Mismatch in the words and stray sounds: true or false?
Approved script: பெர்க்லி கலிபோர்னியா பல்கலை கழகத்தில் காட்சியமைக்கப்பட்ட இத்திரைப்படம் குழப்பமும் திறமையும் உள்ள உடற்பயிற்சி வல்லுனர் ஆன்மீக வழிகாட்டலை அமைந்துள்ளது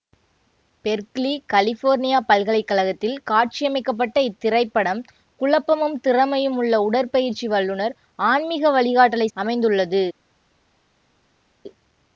false